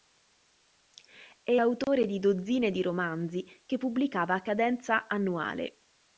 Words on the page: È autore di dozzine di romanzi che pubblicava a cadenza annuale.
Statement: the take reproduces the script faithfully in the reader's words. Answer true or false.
true